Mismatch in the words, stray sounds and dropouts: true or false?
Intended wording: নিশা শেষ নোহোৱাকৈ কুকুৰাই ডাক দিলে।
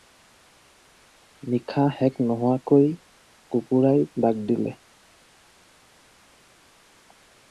false